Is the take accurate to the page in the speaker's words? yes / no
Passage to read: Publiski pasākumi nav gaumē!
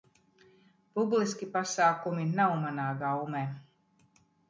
no